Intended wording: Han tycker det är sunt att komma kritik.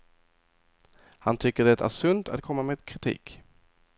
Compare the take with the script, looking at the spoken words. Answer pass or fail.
fail